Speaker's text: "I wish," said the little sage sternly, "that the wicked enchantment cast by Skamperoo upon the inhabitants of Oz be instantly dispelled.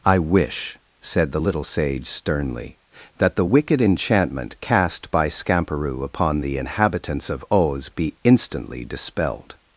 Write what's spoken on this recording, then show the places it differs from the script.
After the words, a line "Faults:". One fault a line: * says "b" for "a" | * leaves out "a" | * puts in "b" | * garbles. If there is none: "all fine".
"I wish," said the little sage sternly, "that the wicked enchantment cast by Skamperoo upon the inhabitants of Oz be instantly dispelled.
Faults:
all fine